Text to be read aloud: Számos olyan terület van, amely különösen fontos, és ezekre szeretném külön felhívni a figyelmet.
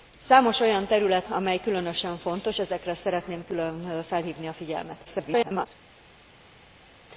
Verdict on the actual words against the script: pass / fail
fail